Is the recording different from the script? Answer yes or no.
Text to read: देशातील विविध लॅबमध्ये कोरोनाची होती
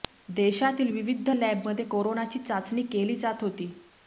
yes